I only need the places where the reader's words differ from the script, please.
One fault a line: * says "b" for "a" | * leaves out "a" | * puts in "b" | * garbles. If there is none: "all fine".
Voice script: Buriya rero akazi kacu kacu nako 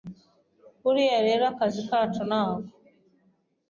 * leaves out "kacu"